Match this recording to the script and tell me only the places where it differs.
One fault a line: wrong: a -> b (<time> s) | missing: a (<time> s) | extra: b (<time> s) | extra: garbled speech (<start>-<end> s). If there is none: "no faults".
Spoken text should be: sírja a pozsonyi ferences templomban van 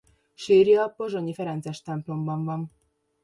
no faults